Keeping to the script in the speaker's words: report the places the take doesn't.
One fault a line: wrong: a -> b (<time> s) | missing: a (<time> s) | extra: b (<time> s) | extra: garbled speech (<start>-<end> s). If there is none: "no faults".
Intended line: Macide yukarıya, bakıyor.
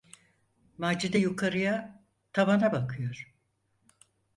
extra: tavana (2.3 s)